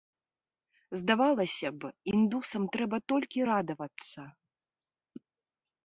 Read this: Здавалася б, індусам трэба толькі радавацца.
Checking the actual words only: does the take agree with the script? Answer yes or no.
yes